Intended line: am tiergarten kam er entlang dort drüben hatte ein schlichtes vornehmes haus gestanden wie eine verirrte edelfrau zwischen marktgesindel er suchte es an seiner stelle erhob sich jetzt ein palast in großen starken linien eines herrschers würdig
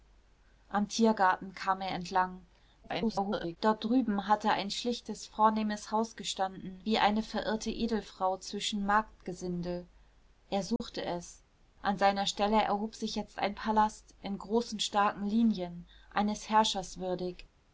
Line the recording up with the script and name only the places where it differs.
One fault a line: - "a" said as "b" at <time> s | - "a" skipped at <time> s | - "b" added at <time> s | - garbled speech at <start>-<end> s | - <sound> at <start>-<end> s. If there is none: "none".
- garbled speech at 2.8-3.6 s
- dropout at 10.8-10.8 s